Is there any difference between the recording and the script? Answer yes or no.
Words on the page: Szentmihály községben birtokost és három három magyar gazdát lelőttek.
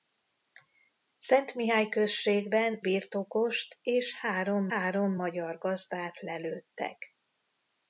no